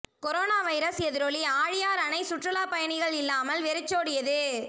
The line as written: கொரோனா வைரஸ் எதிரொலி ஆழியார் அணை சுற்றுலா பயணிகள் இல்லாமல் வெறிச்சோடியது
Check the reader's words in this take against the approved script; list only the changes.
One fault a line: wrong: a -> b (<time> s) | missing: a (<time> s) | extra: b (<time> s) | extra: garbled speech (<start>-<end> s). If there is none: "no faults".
no faults